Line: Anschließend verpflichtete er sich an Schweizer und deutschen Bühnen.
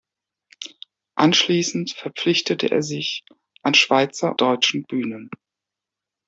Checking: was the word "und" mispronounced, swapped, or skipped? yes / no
yes